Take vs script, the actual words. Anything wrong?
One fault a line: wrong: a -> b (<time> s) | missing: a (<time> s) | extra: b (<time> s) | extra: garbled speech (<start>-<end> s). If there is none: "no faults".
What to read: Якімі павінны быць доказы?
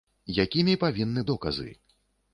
missing: быць (1.2 s)